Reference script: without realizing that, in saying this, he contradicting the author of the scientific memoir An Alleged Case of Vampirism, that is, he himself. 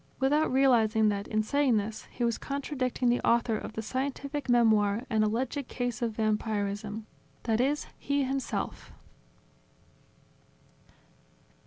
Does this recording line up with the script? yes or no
no